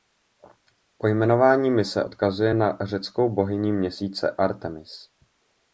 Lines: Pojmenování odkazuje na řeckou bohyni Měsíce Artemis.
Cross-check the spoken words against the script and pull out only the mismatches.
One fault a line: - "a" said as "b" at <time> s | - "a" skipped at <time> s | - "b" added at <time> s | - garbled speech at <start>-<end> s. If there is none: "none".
- "mise" added at 1.7 s